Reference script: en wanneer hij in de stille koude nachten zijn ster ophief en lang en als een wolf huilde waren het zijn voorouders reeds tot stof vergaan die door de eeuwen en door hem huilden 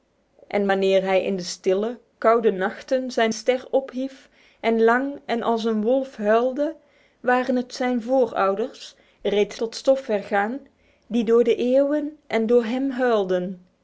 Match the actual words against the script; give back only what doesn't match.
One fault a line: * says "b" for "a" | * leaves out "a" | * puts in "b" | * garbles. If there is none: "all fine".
all fine